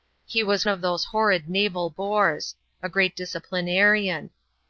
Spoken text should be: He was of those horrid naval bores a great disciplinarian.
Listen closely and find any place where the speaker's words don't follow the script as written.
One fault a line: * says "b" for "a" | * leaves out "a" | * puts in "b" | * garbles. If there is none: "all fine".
all fine